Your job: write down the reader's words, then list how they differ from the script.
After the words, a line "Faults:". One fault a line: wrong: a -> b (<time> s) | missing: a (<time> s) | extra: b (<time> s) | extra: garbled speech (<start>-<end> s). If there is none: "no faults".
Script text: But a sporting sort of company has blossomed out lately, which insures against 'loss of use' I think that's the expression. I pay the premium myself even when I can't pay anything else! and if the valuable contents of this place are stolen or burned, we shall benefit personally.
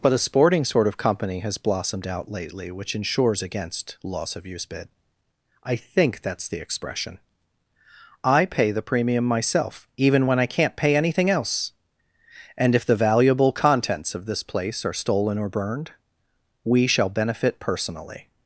But a sporting sort of company has blossomed out lately, which insures against 'loss of use' bid I think that's the expression. I pay the premium myself even when I can't pay anything else! and if the valuable contents of this place are stolen or burned, we shall benefit personally.
Faults:
extra: bid (4.7 s)